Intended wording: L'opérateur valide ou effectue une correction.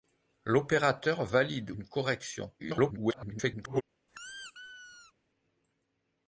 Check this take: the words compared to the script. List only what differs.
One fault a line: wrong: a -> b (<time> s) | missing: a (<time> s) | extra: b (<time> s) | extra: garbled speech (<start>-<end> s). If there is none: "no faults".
missing: ou effectue (1.7 s)
extra: garbled speech (2.6-3.8 s)